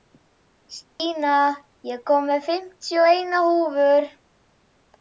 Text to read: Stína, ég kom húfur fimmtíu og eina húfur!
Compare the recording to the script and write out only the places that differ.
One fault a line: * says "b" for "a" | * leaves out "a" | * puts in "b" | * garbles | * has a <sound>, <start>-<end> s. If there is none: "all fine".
* has a dropout, 0.9-1.0 s
* says "með" for "húfur"